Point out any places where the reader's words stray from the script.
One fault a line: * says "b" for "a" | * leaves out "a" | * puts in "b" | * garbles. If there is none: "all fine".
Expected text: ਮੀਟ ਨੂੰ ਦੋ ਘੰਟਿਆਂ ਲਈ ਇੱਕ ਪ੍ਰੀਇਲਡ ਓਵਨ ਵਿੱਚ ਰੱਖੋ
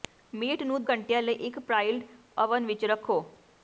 * leaves out "ਦੋ"